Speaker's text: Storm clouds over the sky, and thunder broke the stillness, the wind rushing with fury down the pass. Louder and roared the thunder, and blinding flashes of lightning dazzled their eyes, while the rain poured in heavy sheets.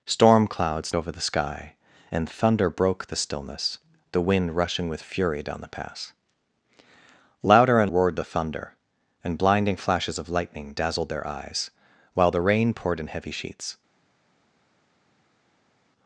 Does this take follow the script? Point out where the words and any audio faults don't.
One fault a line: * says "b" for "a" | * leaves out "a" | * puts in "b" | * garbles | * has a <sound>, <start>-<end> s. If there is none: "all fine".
all fine